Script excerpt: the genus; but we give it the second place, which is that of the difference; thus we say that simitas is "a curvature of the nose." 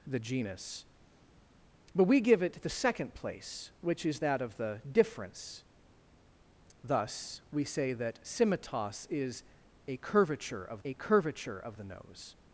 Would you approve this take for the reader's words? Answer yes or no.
no